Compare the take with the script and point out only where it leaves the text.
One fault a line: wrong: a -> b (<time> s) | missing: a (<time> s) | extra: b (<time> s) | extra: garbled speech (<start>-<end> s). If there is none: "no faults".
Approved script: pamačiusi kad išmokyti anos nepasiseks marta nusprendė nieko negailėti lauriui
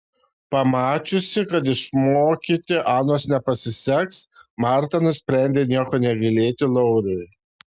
no faults